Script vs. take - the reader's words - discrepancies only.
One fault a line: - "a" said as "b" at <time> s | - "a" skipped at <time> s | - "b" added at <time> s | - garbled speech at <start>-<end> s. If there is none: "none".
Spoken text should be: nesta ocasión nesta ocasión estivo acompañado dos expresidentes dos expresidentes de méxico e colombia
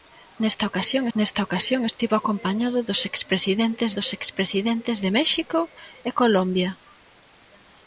none